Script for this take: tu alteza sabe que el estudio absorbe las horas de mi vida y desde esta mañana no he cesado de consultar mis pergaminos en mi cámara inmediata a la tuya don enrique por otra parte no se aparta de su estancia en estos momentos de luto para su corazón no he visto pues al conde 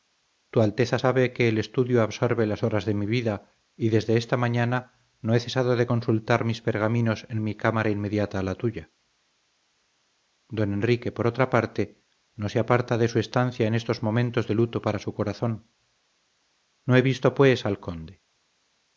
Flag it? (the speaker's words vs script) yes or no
no